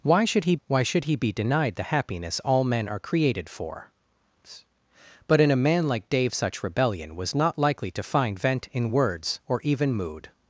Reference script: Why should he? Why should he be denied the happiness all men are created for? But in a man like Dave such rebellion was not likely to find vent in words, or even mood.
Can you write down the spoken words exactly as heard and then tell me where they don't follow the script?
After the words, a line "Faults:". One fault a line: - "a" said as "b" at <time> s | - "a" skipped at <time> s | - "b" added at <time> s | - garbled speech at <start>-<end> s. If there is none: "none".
Why should he? Why should he be denied the happiness all men are created for? But in a man like Dave such rebellion was not likely to find vent in words, or even mood.
Faults:
none